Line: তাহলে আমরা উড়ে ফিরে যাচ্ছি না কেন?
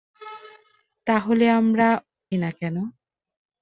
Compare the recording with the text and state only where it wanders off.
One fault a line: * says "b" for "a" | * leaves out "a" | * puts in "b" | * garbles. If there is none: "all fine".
* leaves out "উড়ে ফিরে যাচ্ছি"